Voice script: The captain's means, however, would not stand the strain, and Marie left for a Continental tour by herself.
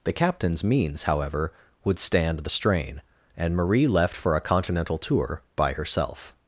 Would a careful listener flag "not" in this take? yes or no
yes